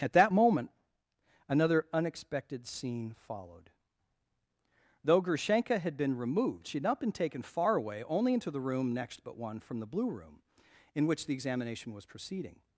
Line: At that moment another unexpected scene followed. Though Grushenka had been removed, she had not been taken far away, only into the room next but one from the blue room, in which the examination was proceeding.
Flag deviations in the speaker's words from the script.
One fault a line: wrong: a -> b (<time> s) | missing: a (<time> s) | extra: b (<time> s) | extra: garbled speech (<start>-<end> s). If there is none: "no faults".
no faults